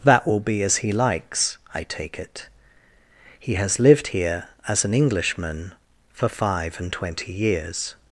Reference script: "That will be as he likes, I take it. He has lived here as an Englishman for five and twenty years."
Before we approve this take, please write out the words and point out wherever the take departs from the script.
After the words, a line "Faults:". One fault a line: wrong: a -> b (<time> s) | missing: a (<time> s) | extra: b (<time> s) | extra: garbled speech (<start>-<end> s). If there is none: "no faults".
"That will be as he likes, I take it. He has lived here as an Englishman for five and twenty years."
Faults:
no faults